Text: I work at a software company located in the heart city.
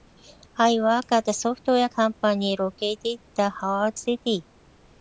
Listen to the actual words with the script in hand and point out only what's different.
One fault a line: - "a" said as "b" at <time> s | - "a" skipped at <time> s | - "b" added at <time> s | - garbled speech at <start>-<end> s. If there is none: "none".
none